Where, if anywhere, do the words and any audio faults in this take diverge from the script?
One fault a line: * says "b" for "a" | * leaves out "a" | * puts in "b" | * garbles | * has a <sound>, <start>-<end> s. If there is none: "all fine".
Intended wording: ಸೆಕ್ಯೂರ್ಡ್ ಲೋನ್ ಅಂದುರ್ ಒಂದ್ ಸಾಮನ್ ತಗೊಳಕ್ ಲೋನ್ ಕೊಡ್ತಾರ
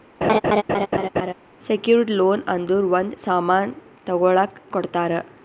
* has a laugh, 0.2-1.3 s
* leaves out "ಲೋನ್"